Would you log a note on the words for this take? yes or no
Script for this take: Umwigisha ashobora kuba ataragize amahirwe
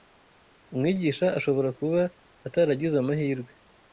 no